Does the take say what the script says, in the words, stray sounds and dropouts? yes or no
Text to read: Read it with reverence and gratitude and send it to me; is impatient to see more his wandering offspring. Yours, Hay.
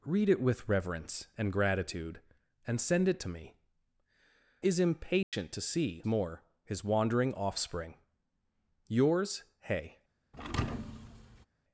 no